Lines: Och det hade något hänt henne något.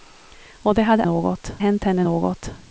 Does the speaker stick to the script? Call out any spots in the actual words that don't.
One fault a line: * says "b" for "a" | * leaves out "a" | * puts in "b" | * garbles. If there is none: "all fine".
all fine